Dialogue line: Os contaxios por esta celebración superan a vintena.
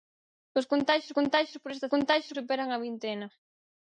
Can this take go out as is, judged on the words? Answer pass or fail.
fail